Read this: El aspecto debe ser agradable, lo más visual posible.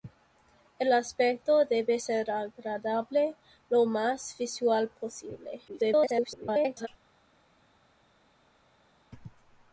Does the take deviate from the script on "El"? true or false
false